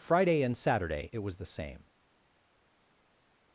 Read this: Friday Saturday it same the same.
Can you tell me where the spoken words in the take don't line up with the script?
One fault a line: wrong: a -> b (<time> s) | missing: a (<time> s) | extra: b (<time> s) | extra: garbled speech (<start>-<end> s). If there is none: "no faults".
extra: and (0.4 s)
wrong: same -> was (1.2 s)